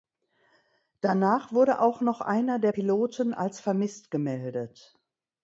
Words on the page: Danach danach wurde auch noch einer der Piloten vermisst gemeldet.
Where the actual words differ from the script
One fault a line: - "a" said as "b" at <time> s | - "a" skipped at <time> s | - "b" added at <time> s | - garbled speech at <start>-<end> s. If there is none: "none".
- "danach" skipped at 1.5 s
- "als" added at 3.3 s